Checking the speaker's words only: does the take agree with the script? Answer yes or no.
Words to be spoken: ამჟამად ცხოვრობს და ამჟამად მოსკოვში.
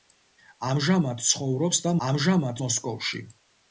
yes